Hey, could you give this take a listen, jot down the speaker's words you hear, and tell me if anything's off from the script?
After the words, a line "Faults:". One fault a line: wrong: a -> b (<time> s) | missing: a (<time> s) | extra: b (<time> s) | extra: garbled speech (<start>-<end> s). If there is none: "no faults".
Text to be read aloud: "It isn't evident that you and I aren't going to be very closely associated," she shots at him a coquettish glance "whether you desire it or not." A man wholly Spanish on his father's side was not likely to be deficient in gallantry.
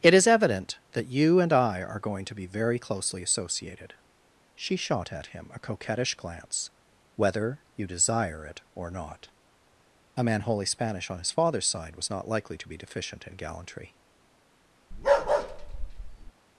"It is evident that you and I are going to be very closely associated," she shot at him a coquettish glance "whether you desire it or not." A man wholly Spanish on his father's side was not likely to be deficient in gallantry.
Faults:
wrong: isn't -> is (0.1 s)
wrong: aren't -> are (1.8 s)
wrong: shots -> shot (4.8 s)